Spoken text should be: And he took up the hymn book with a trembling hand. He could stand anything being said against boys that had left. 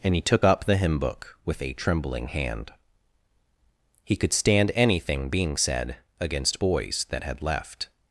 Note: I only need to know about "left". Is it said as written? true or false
true